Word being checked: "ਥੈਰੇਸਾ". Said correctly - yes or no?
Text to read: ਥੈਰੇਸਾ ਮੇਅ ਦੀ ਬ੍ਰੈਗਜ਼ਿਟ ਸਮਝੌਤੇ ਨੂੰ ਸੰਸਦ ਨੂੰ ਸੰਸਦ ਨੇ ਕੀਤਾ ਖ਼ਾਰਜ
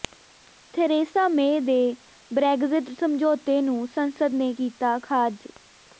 yes